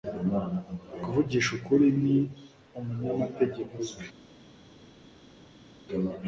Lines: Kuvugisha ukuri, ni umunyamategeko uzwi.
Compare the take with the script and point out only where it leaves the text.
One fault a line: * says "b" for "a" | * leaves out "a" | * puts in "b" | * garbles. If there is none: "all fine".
all fine